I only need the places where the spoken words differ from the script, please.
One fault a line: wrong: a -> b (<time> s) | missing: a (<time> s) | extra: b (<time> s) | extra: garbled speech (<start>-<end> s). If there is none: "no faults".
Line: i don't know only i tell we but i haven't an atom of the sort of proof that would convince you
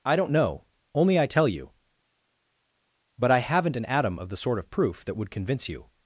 wrong: we -> you (1.5 s)